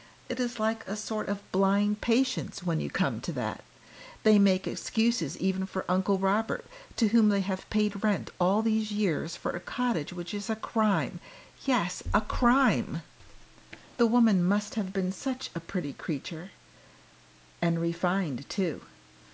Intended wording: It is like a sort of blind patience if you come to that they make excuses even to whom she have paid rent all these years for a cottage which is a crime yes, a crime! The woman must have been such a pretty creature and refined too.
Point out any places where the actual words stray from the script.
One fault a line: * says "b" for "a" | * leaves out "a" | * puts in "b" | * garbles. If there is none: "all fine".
* says "when" for "if"
* puts in "for Uncle Robert"
* says "they" for "she"